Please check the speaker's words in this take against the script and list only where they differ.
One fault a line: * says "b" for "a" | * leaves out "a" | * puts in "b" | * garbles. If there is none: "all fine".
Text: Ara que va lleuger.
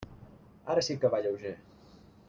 * puts in "sí"